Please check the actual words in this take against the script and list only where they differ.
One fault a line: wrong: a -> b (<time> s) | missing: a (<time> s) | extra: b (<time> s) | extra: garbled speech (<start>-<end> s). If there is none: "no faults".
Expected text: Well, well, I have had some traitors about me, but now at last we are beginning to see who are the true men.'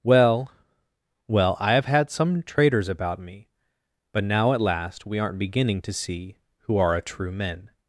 wrong: are -> aren't (5.2 s)
wrong: the -> a (7.0 s)